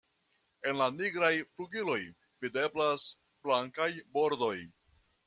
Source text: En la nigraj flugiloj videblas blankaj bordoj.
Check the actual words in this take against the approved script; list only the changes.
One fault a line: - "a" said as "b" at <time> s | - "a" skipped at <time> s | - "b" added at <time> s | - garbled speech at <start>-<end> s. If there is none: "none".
none